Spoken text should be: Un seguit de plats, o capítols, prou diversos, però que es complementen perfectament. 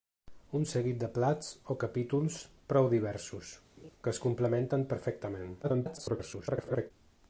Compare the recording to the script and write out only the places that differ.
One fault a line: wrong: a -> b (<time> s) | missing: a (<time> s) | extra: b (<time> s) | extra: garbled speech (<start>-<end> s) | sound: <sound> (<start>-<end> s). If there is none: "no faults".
missing: però (3.5 s)
sound: laugh (3.8-3.9 s)
extra: garbled speech (5.6-6.9 s)